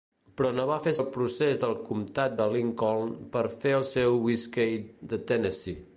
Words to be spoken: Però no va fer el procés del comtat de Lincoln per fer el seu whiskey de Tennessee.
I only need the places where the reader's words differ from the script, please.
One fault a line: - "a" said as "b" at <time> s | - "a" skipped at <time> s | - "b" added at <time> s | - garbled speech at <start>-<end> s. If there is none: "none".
none